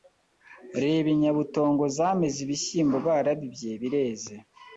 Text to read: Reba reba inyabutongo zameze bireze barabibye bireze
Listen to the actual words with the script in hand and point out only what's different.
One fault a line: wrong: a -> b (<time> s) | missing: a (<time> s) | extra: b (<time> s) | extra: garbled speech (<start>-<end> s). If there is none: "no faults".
missing: reba (1.1 s)
wrong: bireze -> ibishyimbo (2.5 s)